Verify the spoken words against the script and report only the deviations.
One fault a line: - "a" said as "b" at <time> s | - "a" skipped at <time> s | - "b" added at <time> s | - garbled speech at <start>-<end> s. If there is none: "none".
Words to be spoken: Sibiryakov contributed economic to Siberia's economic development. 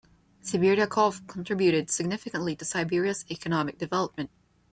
- "economic" said as "significantly" at 1.9 s